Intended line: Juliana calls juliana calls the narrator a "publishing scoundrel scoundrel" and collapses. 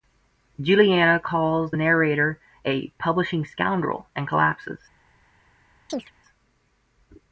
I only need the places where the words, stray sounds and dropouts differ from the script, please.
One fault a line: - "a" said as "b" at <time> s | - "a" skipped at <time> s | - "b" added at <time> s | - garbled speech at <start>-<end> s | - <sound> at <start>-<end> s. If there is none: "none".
- "juliana calls" skipped at 1.7 s
- "scoundrel" skipped at 4.1 s
- chirp at 5.9-6.1 s